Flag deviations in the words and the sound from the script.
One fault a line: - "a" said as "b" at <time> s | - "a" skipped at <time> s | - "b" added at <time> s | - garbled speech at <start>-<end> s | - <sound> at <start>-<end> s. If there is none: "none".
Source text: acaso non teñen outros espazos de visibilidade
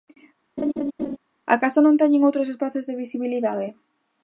- laugh at 0.6-1.2 s